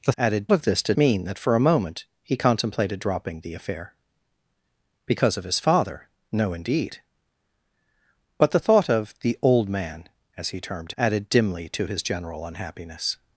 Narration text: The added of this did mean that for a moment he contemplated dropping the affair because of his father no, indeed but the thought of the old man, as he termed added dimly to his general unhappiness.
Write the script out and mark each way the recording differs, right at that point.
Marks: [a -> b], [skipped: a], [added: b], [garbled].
The added of this did mean that for a moment he contemplated dropping the affair because of his father no, indeed but the thought of the old man, as he termed added dimly to his general unhappiness.